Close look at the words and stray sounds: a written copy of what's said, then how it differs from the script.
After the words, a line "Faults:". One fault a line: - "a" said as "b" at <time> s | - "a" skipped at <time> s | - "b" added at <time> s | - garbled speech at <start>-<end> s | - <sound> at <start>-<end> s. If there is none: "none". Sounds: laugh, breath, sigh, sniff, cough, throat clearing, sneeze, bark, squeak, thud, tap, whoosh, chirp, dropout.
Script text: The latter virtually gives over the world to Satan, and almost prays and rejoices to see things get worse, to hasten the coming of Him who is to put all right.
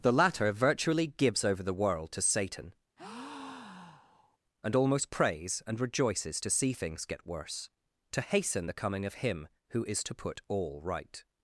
The latter virtually gives over the world to Satan, and almost prays and rejoices to see things get worse, to hasten the coming of Him who is to put all right.
Faults:
- breath at 3.0-4.4 s